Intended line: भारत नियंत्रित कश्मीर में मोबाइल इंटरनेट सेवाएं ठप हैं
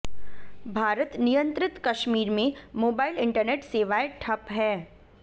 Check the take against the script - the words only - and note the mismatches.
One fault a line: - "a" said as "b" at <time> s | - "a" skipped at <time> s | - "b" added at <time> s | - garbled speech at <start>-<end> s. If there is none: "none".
none